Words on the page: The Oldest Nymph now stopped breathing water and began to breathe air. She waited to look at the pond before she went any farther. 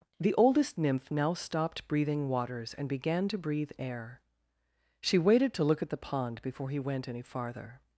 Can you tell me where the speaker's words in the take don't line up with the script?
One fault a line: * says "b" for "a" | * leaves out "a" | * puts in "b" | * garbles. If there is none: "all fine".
* says "waters" for "water"
* says "he" for "she"